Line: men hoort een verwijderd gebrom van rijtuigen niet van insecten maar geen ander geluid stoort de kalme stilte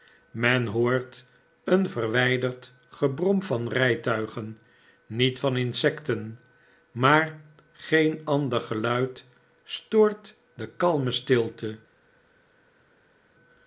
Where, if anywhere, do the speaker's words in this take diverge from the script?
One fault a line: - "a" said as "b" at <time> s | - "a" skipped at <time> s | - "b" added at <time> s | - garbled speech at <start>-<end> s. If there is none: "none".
none